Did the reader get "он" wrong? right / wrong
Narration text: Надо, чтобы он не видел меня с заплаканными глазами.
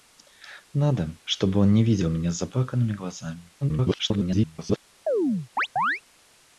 right